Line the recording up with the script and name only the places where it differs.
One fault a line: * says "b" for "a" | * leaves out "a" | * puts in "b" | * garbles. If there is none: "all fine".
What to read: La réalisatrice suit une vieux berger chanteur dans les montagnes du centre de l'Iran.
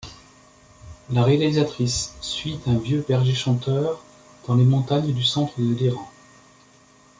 * says "un" for "une"